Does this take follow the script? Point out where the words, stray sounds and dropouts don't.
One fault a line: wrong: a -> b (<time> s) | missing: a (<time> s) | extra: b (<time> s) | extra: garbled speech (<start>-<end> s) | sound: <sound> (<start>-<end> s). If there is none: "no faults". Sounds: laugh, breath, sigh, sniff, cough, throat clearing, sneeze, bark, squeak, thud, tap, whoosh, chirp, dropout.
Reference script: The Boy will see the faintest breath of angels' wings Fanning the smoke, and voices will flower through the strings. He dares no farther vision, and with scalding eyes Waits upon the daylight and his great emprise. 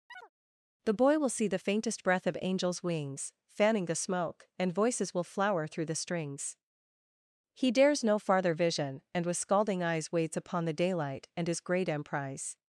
sound: chirp (0.1-0.3 s)